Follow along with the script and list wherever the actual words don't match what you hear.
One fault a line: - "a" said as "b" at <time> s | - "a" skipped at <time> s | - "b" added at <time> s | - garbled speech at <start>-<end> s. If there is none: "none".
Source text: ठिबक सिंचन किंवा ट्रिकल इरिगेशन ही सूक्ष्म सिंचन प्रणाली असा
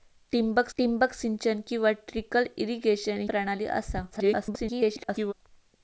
- "ठिबक" added at 0.8 s
- "ही सूक्ष्म सिंचन" skipped at 3.2 s
- garbled speech at 4.1-5.3 s